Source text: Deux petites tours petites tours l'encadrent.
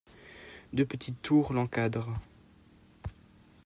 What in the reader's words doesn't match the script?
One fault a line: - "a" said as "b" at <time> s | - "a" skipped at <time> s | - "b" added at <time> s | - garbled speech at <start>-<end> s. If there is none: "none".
- "petites tours" skipped at 1.5 s